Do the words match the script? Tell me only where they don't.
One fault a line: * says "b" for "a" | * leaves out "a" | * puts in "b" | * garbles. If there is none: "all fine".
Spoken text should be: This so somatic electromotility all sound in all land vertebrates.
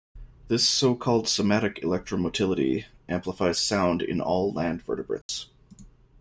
* puts in "called"
* says "amplifies" for "all"